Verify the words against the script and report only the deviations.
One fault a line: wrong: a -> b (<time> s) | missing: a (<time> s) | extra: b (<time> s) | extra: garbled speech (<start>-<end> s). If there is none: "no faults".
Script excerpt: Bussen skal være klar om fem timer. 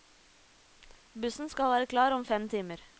no faults